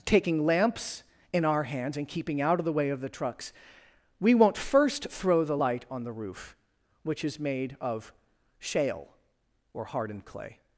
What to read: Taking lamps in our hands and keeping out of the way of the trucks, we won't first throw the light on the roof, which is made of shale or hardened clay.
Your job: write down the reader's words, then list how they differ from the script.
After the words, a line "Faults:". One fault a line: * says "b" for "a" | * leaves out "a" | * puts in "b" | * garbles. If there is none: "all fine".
Taking lamps in our hands and keeping out of the way of the trucks, we won't first throw the light on the roof, which is made of shale or hardened clay.
Faults:
all fine